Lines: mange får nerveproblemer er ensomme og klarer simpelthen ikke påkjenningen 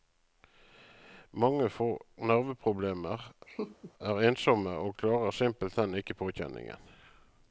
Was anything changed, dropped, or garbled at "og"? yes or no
no